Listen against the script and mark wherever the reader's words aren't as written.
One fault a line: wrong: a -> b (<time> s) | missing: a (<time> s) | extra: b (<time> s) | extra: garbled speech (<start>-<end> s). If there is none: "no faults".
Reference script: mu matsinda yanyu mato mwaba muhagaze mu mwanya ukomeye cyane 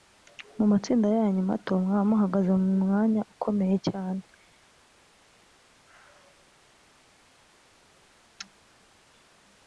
no faults